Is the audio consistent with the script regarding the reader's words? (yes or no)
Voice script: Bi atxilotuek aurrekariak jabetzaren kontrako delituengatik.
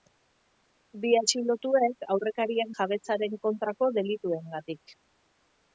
yes